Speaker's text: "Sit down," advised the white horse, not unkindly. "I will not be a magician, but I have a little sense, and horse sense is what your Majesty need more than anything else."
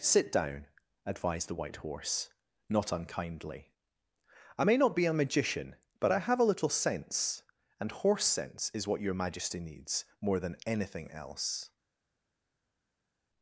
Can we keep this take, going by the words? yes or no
no